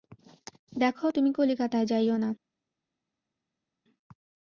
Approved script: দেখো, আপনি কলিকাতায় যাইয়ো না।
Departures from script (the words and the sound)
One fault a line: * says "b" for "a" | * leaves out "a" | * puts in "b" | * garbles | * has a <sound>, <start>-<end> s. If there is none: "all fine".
* says "তুমি" for "আপনি"